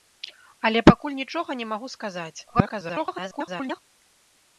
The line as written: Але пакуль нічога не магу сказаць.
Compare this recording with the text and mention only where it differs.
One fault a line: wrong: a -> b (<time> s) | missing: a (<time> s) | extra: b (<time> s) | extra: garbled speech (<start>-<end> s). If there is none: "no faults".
extra: garbled speech (2.5-3.8 s)